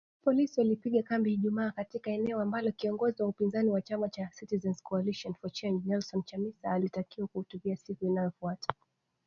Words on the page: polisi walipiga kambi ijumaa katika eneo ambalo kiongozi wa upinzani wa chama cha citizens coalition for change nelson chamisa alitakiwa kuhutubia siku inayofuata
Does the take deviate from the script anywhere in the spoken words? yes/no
no